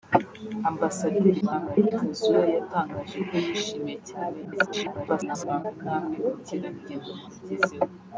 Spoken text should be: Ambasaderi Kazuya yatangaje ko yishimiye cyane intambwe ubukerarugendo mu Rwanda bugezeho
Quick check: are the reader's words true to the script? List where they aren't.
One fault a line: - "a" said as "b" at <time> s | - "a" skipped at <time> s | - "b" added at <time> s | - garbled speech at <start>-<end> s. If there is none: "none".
- garbled speech at 1.4-1.9 s
- garbled speech at 4.4-5.6 s
- "Rwanda" skipped at 7.3 s